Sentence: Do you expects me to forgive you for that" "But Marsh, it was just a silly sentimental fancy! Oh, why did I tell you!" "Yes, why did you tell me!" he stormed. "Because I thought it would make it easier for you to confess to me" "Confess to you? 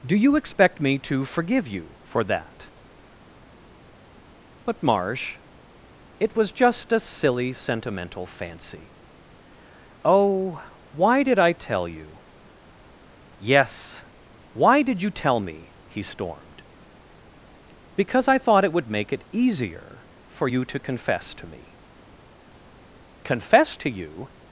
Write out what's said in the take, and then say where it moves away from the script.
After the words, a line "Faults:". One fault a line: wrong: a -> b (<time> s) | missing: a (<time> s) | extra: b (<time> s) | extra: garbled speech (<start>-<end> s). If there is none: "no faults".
Do you expect me to forgive you for that" "But Marsh, it was just a silly sentimental fancy! Oh, why did I tell you!" "Yes, why did you tell me!" he stormed. "Because I thought it would make it easier for you to confess to me" "Confess to you?
Faults:
wrong: expects -> expect (0.3 s)